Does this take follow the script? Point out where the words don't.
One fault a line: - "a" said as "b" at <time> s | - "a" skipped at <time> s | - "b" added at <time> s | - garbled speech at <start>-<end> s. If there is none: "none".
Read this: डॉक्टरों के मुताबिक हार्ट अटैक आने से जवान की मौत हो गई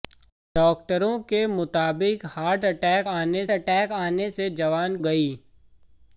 - "अटैक आने" added at 3.5 s
- "की मौत हो" skipped at 5.0 s